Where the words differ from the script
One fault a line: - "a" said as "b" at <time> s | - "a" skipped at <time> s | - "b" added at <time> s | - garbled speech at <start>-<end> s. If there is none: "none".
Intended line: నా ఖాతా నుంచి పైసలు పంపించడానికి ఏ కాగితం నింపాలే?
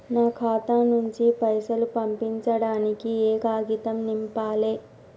none